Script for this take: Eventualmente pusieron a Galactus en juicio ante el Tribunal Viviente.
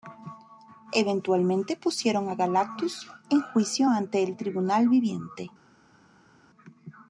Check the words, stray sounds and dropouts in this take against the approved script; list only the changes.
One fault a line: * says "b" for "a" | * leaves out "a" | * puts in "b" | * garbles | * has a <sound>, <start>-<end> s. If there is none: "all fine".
all fine